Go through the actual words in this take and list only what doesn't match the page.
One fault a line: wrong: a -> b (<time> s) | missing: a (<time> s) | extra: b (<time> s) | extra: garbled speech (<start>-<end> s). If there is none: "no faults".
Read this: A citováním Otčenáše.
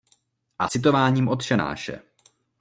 no faults